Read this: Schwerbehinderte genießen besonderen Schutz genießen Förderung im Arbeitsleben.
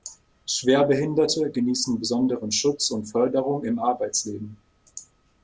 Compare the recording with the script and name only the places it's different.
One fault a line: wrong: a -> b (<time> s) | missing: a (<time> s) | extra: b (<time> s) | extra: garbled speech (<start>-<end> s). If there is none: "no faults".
wrong: genießen -> und (2.9 s)